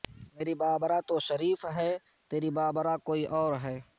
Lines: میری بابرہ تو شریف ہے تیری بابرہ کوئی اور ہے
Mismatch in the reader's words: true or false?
false